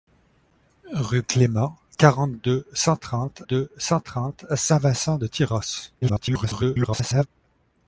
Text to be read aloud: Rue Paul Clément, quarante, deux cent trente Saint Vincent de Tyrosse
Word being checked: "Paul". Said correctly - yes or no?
no